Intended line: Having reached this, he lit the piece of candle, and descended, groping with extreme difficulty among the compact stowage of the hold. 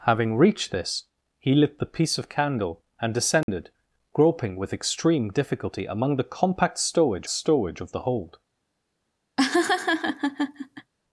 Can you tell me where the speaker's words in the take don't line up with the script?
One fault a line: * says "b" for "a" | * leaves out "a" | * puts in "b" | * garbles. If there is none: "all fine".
* puts in "stowage"